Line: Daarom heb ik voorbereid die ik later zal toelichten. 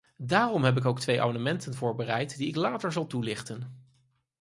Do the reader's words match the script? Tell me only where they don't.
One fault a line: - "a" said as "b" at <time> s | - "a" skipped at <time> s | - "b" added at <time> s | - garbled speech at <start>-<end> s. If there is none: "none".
- "ook twee amendementen" added at 0.8 s